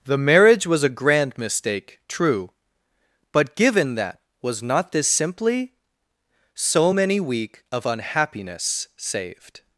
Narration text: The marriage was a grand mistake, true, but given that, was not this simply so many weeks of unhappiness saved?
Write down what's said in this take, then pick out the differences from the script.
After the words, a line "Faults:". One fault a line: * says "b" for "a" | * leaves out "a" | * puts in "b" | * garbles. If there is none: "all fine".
The marriage was a grand mistake, true, but given that, was not this simply so many week of unhappiness saved?
Faults:
* says "week" for "weeks"